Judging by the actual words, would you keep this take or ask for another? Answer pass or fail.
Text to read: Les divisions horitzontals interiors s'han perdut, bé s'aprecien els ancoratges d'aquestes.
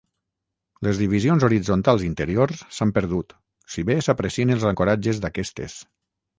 fail